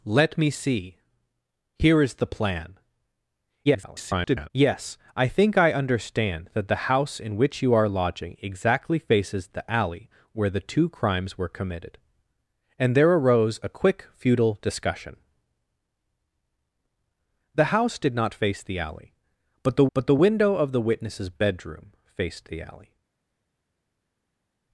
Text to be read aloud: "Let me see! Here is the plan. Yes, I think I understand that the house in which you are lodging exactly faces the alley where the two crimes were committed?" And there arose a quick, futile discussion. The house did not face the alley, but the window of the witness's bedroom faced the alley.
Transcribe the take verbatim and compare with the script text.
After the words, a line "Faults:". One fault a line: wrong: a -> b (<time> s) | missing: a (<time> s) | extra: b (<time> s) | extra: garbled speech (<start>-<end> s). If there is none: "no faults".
"Let me see! Here is the plan. [garbled] Yes, I think I understand that the house in which you are lodging exactly faces the alley where the two crimes were committed?" And there arose a quick, futile discussion. The house did not face the alley, but the but the window of the witness's bedroom faced the alley.
Faults:
extra: garbled speech (3.6-4.5 s)
extra: but the (19.9 s)